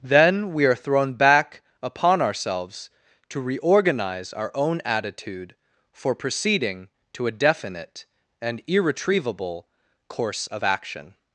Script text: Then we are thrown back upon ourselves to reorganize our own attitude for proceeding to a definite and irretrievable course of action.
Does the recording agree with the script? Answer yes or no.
yes